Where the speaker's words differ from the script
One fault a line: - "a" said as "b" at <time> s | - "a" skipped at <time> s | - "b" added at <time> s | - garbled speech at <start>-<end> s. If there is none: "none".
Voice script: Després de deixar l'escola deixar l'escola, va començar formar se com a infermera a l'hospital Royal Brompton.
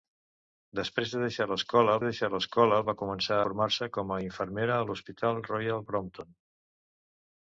none